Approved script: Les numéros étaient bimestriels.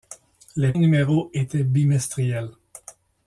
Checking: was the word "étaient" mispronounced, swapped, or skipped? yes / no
no